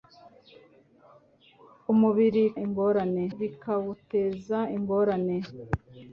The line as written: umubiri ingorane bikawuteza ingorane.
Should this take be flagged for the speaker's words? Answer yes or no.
no